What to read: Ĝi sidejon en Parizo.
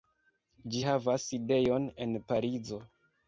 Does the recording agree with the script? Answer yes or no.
no